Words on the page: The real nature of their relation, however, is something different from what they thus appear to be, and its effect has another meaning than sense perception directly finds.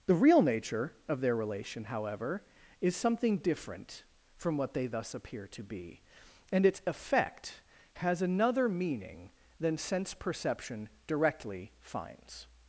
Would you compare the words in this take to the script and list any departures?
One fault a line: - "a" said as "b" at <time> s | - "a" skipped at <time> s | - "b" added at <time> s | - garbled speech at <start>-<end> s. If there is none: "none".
none